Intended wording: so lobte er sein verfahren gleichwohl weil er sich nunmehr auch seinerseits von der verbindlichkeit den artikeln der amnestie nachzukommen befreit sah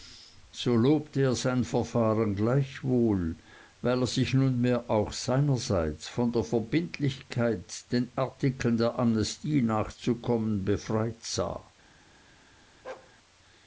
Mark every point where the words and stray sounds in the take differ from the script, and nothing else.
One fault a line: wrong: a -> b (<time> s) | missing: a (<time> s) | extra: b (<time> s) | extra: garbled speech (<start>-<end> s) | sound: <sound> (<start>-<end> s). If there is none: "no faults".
sound: bark (12.8-13.1 s)